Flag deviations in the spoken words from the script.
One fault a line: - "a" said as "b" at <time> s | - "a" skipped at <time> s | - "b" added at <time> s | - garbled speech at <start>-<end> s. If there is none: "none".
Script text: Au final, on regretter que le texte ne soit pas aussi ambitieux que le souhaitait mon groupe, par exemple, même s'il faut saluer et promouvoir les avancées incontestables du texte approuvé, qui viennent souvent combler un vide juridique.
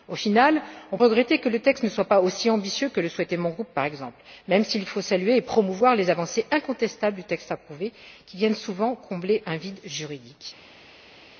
none